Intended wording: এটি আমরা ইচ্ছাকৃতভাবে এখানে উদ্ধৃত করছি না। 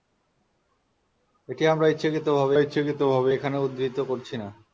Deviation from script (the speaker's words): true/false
true